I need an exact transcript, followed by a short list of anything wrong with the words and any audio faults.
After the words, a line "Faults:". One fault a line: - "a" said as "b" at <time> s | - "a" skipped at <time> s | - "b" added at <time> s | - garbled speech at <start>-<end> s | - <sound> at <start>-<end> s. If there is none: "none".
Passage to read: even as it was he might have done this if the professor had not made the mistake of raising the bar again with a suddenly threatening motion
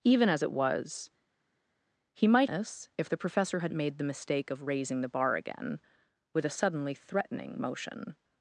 even as it was he might this if the professor had made the mistake of raising the bar again with a suddenly threatening motion
Faults:
- "have done" skipped at 2.5 s
- "not" skipped at 3.7 s